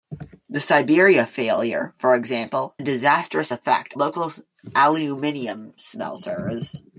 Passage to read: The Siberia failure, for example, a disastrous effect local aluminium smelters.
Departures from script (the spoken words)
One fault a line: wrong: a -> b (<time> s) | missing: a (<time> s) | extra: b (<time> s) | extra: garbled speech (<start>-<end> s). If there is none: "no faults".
no faults